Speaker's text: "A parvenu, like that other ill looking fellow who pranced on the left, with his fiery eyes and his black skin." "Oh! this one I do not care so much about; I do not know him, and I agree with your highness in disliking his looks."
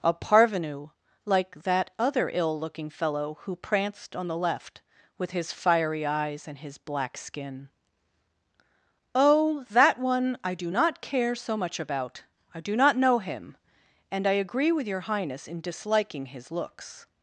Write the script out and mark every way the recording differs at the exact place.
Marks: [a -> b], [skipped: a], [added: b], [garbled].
"A parvenu, like that other ill looking fellow who pranced on the left, with his fiery eyes and his black skin." "Oh! [this -> that] one I do not care so much about; I do not know him, and I agree with your highness in disliking his looks."